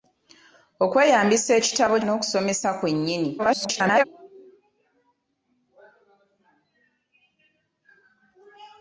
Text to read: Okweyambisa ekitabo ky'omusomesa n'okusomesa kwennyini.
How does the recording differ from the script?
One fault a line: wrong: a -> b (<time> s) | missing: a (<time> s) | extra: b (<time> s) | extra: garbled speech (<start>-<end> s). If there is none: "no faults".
missing: ky'omusomesa (1.9 s)
extra: garbled speech (3.4-4.0 s)